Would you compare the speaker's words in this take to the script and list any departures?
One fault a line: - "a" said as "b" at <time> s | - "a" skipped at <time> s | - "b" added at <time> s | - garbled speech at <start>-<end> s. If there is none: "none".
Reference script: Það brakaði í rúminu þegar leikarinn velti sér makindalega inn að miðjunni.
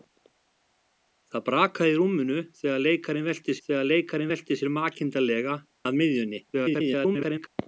- "þegar leikarinn velti" added at 3.7 s
- "inn" skipped at 5.6 s
- garbled speech at 6.5-7.5 s